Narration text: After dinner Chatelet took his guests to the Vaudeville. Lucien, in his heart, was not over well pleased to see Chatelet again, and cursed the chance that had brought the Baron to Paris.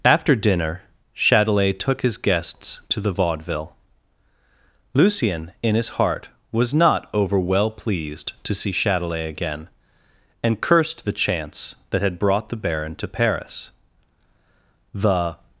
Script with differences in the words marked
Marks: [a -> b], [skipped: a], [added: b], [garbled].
After dinner Chatelet took his guests to the Vaudeville. Lucien, in his heart, was not over well pleased to see Chatelet again, and cursed the chance that had brought the Baron to Paris. [added: The]